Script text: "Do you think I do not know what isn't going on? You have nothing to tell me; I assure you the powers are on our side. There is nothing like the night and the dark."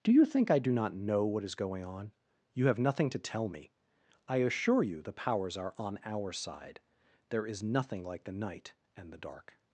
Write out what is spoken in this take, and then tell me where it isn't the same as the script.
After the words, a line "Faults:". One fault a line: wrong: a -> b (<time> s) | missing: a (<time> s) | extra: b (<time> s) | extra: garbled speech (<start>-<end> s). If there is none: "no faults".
"Do you think I do not know what is going on? You have nothing to tell me; I assure you the powers are on our side. There is nothing like the night and the dark."
Faults:
wrong: isn't -> is (1.4 s)